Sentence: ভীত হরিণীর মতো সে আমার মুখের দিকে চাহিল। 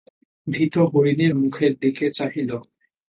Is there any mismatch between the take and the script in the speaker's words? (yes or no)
yes